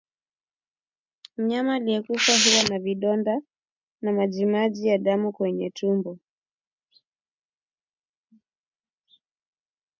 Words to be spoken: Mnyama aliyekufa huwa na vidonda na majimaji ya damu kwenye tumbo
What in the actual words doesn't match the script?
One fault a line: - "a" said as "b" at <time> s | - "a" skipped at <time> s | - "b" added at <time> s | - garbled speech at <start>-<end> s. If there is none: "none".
none